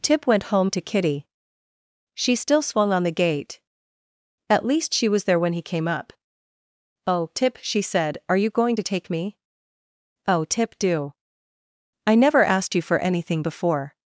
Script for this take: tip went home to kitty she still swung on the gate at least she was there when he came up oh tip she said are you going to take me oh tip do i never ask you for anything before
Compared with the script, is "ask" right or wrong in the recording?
wrong